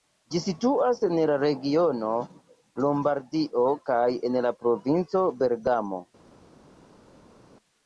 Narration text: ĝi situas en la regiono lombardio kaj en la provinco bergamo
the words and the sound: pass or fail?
pass